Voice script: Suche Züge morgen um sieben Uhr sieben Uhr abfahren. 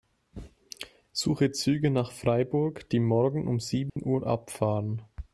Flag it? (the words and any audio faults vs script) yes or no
yes